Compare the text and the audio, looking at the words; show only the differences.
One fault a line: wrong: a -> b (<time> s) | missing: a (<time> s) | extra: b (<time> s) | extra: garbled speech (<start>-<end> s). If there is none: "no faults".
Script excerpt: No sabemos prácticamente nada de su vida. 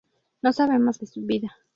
missing: prácticamente nada (1.0 s)